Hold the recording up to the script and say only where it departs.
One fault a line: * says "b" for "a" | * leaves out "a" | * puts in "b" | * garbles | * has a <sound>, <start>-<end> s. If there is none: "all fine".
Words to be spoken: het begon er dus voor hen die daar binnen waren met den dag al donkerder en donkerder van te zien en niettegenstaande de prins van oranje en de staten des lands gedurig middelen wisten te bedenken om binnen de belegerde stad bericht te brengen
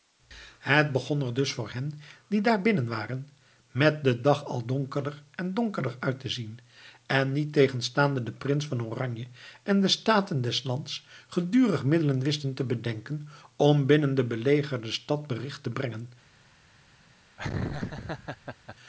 * says "uit" for "van"
* has a laugh, 17.4-18.8 s